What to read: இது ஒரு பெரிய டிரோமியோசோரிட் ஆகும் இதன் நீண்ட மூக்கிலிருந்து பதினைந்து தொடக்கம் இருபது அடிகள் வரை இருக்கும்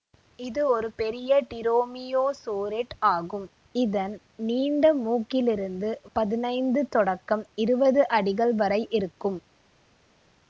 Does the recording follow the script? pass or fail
pass